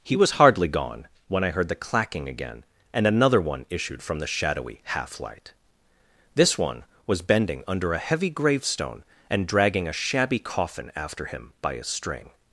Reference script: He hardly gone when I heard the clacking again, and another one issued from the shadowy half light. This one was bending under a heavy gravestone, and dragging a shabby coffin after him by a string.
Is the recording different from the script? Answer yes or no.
yes